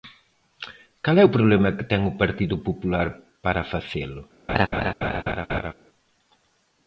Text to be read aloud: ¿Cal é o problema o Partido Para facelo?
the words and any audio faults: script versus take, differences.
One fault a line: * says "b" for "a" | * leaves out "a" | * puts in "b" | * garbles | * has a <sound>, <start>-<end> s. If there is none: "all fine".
* puts in "que ten"
* puts in "Popular"
* has a laugh, 4.5-5.7 s